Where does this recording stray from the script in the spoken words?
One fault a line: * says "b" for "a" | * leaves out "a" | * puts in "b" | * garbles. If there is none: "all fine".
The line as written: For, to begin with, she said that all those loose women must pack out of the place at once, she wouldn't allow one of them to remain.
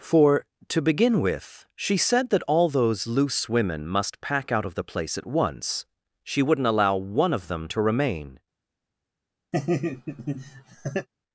all fine